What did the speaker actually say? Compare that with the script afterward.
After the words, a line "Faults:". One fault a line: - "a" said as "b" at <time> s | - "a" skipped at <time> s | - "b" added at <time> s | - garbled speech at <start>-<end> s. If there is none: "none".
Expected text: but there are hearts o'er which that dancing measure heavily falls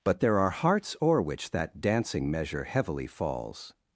but there are hearts o'er which that dancing measure heavily falls
Faults:
none